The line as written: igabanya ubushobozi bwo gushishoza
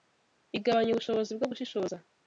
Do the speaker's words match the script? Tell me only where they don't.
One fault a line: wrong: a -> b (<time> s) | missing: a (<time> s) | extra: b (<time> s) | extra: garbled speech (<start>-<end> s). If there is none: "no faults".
no faults